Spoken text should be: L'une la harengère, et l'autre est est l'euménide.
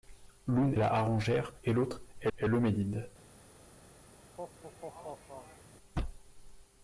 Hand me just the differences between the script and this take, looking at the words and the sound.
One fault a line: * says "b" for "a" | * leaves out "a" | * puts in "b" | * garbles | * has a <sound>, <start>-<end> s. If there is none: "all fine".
* has a laugh, 4.2-5.7 s